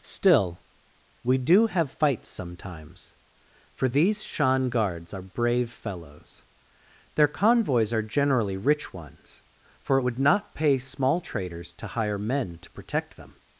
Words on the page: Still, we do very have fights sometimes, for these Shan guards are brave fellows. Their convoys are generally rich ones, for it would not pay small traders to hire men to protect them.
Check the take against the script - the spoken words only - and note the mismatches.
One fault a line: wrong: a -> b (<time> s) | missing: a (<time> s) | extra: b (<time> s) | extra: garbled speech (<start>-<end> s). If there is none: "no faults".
missing: very (1.7 s)